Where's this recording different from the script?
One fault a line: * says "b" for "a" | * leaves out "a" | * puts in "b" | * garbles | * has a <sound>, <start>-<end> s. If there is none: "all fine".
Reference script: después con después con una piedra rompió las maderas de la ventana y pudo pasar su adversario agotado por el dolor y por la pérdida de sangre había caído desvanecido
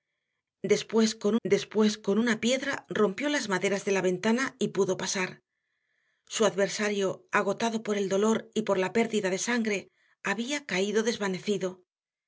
all fine